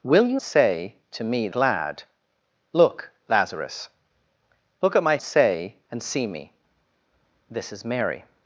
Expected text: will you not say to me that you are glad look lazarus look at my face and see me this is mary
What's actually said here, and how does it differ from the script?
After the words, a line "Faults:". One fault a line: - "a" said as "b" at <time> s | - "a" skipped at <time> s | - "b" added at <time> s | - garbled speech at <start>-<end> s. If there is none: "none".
will you say to me glad look lazarus look at my say and see me this is mary
Faults:
- "not" skipped at 0.4 s
- "that you are" skipped at 1.5 s
- "face" said as "say" at 5.2 s